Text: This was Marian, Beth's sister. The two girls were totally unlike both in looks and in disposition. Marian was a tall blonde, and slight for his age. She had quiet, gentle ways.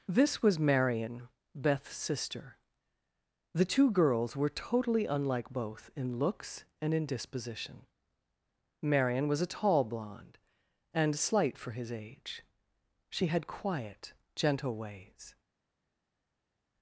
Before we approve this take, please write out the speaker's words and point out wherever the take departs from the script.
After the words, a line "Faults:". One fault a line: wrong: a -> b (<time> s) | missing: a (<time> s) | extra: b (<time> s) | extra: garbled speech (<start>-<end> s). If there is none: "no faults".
This was Marian, Beth's sister. The two girls were totally unlike both in looks and in disposition. Marian was a tall blonde, and slight for his age. She had quiet, gentle ways.
Faults:
no faults